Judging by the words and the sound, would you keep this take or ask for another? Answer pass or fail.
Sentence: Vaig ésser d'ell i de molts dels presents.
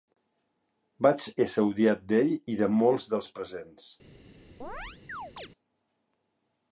fail